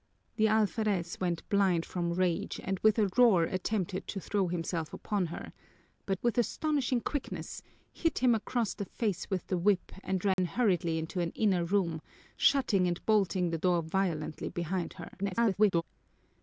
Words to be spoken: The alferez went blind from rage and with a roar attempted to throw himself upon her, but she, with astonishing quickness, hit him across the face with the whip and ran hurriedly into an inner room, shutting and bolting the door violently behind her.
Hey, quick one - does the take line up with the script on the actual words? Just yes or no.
no